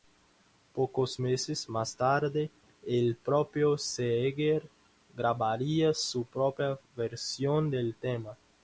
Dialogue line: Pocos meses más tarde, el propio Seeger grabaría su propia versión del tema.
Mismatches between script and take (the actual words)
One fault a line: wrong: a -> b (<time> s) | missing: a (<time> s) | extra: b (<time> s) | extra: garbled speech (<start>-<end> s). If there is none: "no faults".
no faults